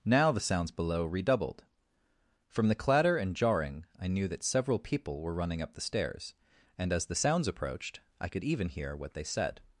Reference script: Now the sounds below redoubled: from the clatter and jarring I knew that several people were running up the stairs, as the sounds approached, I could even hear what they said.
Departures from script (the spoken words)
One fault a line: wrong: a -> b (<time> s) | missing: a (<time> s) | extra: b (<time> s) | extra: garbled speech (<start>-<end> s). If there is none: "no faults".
extra: and (6.8 s)